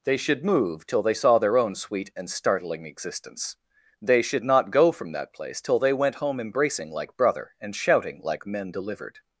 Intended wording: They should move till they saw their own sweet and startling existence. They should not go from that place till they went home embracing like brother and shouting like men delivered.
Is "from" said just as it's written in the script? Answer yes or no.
yes